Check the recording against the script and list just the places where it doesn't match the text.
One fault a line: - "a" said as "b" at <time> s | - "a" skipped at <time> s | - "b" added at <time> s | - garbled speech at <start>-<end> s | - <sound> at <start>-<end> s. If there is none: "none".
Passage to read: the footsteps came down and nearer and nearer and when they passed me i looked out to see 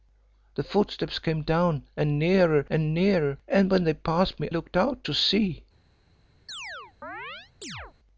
- "i" skipped at 4.5 s
- chirp at 6.5-7.9 s